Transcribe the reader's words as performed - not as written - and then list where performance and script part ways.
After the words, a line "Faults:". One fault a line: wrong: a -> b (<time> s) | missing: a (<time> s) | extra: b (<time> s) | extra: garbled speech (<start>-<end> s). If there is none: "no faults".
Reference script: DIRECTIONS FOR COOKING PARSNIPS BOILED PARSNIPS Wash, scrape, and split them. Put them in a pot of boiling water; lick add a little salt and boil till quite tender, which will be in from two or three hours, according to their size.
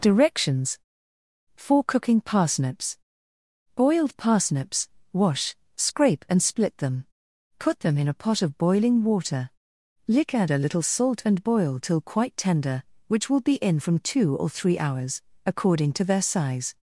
DIRECTIONS FOR COOKING PARSNIPS BOILED PARSNIPS Wash, scrape, and split them. Put them in a pot of boiling water; lick add a little salt and boil till quite tender, which will be in from two or three hours, according to their size.
Faults:
no faults